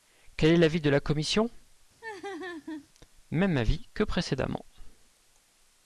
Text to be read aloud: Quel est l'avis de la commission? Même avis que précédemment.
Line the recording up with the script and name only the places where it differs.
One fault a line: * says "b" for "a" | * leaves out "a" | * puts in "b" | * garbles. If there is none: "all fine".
all fine